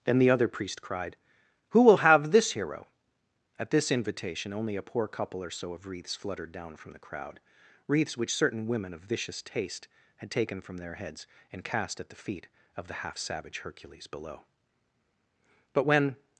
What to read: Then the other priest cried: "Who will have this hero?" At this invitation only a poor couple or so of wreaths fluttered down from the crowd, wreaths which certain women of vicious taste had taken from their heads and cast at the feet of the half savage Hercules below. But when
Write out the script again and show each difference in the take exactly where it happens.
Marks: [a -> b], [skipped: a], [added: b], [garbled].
Then the other priest cried: "Who will have this hero?" At this invitation only a poor couple or so of wreaths fluttered down from the crowd, wreaths which certain women of vicious taste had taken from their heads and cast at the feet of the half savage Hercules below. But when